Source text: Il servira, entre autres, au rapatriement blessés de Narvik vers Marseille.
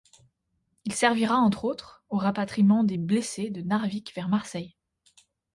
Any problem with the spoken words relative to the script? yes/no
yes